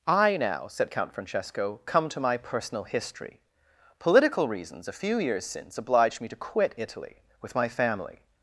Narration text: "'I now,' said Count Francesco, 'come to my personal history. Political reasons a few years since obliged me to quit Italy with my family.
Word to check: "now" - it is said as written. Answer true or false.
true